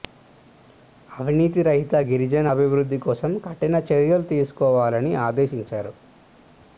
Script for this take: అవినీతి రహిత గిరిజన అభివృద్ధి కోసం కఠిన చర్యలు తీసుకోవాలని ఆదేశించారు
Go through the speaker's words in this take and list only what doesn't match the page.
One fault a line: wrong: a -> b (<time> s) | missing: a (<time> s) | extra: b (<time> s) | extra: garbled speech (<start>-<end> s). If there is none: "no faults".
no faults